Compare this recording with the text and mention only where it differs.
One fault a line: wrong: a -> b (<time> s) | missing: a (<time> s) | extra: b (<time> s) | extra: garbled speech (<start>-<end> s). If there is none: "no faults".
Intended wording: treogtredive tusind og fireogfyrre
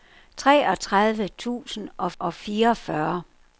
extra: og (2.2 s)